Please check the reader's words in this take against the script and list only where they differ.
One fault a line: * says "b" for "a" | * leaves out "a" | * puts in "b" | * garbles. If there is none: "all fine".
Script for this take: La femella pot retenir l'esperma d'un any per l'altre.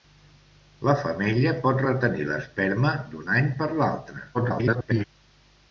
* garbles